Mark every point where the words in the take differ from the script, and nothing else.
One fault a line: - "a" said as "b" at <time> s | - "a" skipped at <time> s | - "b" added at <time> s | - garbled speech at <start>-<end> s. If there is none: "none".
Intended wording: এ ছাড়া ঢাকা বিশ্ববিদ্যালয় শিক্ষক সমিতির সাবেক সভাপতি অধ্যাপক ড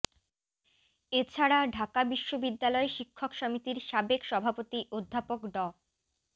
none